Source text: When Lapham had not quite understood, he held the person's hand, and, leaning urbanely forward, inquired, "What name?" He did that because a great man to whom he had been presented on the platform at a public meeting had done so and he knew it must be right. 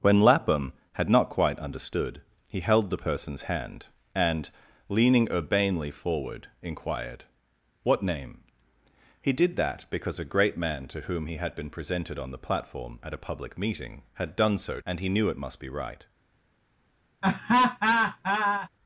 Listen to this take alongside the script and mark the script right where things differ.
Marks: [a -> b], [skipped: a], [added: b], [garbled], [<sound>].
When Lapham had not quite understood, he held the person's hand, and, leaning urbanely forward, inquired, "What name?" He did that because a great man to whom he had been presented on the platform at a public meeting had done so and he knew it must be right. [laugh]